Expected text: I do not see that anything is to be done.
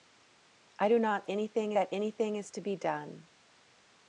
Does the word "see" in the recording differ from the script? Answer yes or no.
yes